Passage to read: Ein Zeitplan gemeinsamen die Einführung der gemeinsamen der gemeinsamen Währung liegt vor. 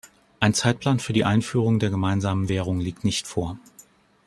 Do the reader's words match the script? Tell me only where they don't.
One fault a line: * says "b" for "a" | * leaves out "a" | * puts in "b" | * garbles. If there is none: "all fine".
* says "für" for "gemeinsamen"
* leaves out "der gemeinsamen"
* puts in "nicht"